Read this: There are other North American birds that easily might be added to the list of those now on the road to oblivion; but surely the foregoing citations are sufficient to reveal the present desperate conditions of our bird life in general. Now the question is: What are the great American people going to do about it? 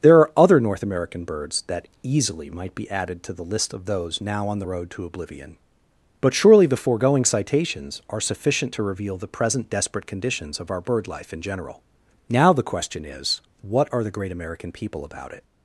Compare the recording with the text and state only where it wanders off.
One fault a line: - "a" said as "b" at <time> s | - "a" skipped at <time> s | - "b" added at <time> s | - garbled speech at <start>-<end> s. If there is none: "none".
- "going to do" skipped at 15.1 s